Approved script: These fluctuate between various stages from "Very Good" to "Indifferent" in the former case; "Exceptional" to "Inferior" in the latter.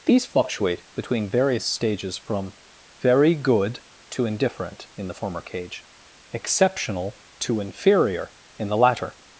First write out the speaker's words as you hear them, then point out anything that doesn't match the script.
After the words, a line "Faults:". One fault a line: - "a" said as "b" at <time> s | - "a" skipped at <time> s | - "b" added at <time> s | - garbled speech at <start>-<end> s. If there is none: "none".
These fluctuate between various stages from "Very Good" to "Indifferent" in the former cage; "Exceptional" to "Inferior" in the latter.
Faults:
- "case" said as "cage" at 5.4 s